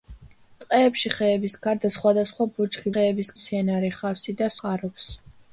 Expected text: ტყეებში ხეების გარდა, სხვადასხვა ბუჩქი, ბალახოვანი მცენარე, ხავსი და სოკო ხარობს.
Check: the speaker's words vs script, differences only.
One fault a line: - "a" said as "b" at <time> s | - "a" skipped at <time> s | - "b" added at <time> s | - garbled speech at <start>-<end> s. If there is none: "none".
- "ბალახოვანი" said as "ხეების" at 2.9 s
- "სოკო" skipped at 4.5 s